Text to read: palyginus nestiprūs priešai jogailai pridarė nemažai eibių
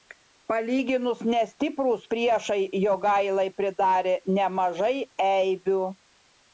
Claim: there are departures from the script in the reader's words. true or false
false